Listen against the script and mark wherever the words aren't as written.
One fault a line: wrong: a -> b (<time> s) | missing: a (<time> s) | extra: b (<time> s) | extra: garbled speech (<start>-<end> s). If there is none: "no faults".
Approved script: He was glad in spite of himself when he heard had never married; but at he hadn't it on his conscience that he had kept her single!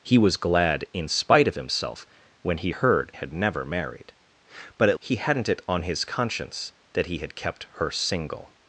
no faults